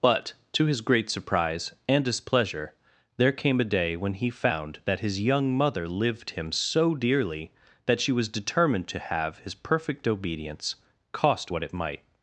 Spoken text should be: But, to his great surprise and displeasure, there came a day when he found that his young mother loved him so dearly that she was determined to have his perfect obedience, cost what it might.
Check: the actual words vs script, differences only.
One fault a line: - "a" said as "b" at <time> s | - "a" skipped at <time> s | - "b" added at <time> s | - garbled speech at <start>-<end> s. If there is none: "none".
- "loved" said as "lived" at 5.9 s